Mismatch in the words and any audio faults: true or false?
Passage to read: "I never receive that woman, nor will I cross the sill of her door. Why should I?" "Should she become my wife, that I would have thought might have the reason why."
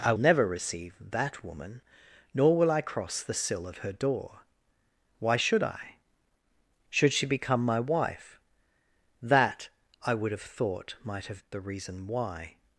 false